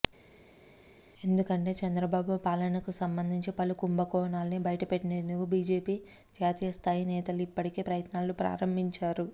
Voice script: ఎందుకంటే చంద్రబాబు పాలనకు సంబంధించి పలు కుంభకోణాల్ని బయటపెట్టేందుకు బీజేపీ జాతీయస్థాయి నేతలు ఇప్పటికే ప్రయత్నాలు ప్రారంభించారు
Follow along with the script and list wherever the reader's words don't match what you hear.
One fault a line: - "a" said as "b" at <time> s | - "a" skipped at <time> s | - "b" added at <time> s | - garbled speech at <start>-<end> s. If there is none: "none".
none